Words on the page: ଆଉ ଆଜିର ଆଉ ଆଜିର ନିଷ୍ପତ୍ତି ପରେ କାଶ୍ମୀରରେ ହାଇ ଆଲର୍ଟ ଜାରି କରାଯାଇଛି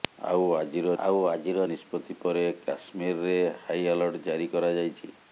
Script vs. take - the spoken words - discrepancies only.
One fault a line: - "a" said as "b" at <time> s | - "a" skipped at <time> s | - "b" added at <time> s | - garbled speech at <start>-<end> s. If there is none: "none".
none